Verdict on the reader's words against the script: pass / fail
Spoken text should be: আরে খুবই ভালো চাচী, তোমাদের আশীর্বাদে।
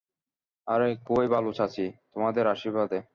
pass